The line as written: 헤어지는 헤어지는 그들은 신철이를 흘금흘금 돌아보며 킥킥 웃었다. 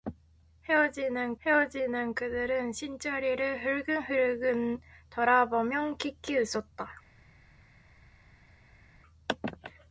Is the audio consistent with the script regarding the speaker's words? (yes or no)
yes